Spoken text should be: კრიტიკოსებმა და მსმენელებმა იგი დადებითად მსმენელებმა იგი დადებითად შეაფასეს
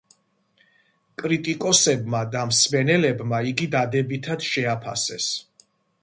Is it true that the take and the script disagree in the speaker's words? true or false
true